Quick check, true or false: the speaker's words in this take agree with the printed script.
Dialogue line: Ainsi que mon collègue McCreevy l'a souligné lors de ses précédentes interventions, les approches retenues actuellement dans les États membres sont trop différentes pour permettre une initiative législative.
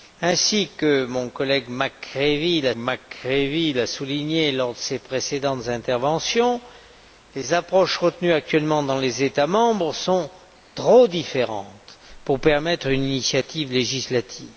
false